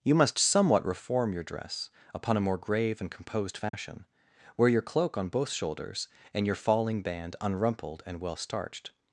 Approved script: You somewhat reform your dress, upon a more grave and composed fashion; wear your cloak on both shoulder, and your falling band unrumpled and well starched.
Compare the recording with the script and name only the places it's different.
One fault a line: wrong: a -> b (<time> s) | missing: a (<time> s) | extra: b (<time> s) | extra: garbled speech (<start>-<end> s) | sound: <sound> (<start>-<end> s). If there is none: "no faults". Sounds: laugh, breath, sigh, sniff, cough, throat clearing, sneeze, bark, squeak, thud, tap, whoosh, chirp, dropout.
extra: must (0.1 s)
sound: dropout (3.7-3.7 s)
wrong: shoulder -> shoulders (5.5 s)